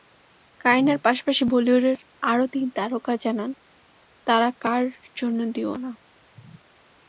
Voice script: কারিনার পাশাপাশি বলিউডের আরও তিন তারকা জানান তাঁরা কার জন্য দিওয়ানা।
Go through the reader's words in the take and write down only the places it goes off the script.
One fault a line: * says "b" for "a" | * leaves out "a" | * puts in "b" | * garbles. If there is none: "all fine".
all fine